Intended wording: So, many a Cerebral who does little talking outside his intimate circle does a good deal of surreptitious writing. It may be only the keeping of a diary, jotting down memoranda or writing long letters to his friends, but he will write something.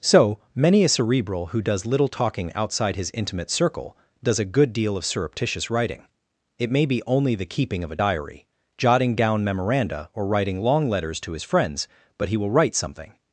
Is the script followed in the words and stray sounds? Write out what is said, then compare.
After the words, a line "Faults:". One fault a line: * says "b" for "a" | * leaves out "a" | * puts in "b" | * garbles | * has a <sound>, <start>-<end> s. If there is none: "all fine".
So, many a Cerebral who does little talking outside his intimate circle does a good deal of surreptitious writing. It may be only the keeping of a diary, jotting down memoranda or writing long letters to his friends, but he will write something.
Faults:
all fine